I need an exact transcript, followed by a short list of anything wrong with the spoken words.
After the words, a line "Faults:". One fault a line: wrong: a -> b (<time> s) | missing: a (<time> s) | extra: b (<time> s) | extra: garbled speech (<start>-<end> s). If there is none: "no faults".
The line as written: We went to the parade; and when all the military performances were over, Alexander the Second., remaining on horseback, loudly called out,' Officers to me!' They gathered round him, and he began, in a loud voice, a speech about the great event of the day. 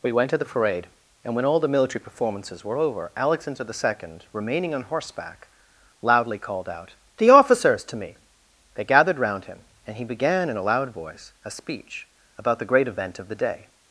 We went to the parade; and when all the military performances were over, Alexander the Second., remaining on horseback, loudly called out,' The officers to me!' They gathered round him, and he began, in a loud voice, a speech about the great event of the day.
Faults:
extra: The (7.2 s)